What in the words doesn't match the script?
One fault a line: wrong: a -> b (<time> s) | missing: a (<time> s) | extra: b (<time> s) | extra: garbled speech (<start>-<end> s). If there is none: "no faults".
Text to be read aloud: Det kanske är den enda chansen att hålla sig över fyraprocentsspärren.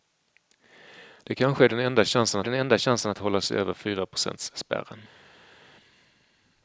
extra: den enda chansen (2.4 s)